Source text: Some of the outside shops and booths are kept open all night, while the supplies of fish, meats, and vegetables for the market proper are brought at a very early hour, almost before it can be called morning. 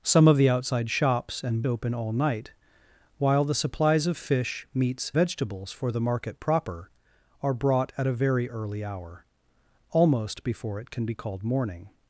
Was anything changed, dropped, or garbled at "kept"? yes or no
yes